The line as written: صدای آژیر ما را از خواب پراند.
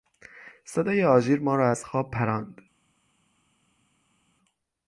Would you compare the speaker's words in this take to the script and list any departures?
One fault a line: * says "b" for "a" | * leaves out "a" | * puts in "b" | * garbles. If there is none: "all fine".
all fine